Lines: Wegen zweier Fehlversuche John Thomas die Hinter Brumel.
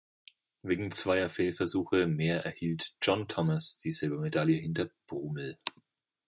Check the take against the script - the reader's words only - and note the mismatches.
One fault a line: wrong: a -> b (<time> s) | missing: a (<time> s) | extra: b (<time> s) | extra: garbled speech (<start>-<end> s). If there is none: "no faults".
extra: mehr erhielt (2.1 s)
extra: Silbermedaille (3.9 s)